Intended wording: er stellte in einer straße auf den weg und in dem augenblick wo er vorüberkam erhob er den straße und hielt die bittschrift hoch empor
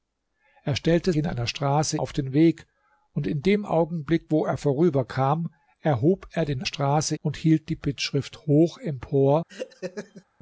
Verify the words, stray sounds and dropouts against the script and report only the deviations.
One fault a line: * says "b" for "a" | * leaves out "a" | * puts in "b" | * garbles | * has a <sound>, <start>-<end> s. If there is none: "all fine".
* has a laugh, 9.5-10.2 s